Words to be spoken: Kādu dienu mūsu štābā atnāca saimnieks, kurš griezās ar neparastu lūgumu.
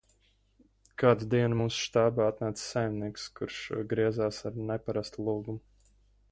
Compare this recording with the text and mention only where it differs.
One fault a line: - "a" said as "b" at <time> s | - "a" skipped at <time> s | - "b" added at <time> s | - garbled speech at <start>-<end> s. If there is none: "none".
none